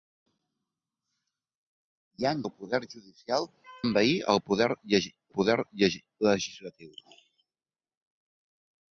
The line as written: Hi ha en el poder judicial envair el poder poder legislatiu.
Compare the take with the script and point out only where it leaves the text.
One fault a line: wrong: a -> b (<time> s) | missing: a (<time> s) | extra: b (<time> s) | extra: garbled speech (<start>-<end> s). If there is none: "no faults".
no faults